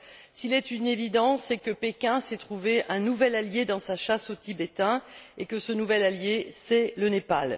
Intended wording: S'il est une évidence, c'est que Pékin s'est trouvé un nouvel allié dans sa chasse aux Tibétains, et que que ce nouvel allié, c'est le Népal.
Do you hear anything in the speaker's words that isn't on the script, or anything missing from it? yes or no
yes